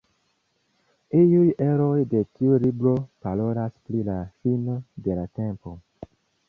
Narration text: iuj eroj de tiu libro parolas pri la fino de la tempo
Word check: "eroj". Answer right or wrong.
right